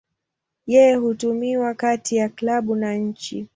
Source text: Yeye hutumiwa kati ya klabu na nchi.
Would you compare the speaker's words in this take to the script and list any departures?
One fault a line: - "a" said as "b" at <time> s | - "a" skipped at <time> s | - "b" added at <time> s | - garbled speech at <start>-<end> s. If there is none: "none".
none